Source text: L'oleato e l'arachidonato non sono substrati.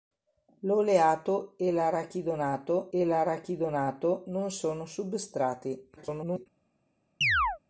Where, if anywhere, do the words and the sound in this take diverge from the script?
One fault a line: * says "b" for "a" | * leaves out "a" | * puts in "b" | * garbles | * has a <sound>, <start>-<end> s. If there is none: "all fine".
* puts in "e l'arachidonato"
* garbles
* has a chirp, 7.2-7.6 s